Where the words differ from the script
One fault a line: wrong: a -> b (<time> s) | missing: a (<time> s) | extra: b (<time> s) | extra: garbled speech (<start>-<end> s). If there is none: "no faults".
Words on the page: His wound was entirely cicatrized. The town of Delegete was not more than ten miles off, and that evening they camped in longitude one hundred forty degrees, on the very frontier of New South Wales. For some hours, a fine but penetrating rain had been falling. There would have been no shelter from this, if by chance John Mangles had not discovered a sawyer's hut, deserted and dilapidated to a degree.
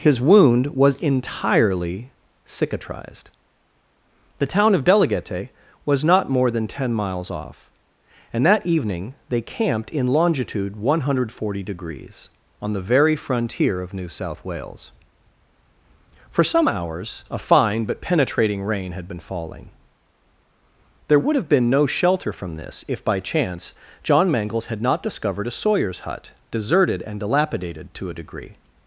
no faults